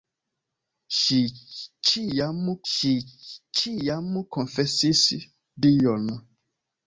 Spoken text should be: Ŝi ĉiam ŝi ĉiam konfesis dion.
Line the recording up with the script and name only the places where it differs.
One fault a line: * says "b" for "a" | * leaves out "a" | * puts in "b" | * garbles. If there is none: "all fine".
all fine